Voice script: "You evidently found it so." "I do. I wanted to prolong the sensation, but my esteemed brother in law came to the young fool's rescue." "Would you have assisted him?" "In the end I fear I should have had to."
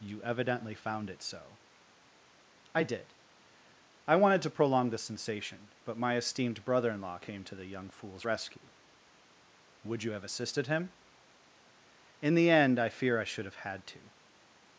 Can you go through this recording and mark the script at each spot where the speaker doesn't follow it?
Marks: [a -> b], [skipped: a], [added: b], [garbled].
"You evidently found it so." "I [do. -> did] I wanted to prolong the sensation, but my esteemed brother in law came to the young fool's rescue." "Would you have assisted him?" "In the end I fear I should have had to."